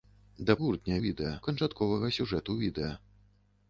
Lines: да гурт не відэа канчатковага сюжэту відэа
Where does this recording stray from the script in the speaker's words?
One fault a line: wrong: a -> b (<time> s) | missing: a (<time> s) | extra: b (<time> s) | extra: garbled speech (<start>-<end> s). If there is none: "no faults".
no faults